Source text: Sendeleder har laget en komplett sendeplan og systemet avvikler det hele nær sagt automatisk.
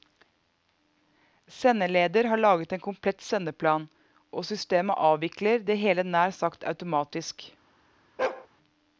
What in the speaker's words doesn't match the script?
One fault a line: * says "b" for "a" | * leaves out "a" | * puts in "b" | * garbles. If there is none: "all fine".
all fine